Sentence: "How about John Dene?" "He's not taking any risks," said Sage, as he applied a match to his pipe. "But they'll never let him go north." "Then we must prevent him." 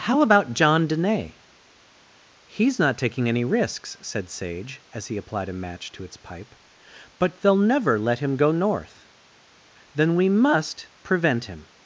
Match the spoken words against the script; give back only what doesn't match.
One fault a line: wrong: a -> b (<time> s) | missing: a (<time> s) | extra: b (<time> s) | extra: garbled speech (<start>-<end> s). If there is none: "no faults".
wrong: his -> its (6.0 s)